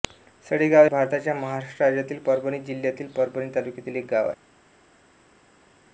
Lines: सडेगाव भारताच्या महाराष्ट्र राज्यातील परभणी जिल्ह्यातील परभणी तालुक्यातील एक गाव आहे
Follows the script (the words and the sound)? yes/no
yes